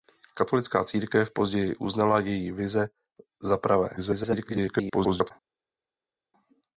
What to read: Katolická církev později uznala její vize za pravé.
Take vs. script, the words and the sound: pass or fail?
fail